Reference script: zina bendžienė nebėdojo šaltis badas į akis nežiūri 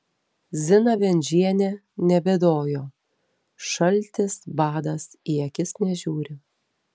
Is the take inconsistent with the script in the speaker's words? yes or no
no